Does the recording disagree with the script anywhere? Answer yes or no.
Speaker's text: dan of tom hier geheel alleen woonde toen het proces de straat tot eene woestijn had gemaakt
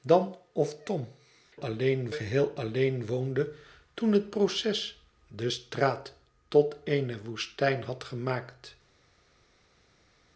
yes